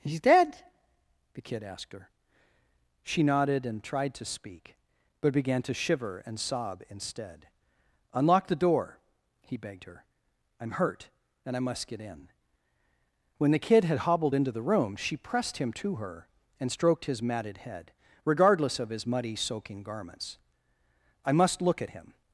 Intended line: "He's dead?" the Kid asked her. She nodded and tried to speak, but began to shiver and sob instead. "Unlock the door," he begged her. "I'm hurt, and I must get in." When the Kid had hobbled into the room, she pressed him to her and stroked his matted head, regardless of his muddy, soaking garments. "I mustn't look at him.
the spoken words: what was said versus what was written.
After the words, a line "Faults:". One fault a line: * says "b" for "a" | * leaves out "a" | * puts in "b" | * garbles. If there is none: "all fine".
"He's dead?" the Kid asked her. She nodded and tried to speak, but began to shiver and sob instead. "Unlock the door," he begged her. "I'm hurt, and I must get in." When the Kid had hobbled into the room, she pressed him to her and stroked his matted head, regardless of his muddy, soaking garments. "I must look at him.
Faults:
* says "must" for "mustn't"